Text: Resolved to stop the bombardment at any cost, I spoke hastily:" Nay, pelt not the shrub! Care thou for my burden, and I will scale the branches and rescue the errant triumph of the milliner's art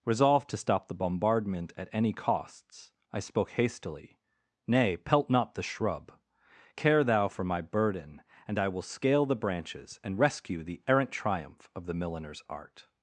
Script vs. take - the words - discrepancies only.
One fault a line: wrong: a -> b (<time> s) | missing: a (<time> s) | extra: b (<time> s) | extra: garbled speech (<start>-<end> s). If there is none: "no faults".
wrong: cost -> costs (2.1 s)